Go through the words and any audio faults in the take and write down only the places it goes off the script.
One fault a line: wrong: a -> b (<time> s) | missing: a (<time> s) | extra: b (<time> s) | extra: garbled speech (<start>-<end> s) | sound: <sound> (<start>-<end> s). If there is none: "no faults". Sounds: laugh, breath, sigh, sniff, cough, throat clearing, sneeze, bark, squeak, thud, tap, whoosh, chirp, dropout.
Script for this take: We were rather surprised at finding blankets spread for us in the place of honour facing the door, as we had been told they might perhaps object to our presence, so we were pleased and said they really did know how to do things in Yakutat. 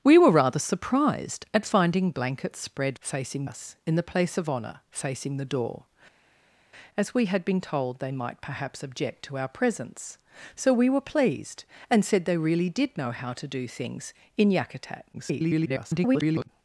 wrong: for -> facing (3.0 s)
extra: garbled speech (15.1-16.5 s)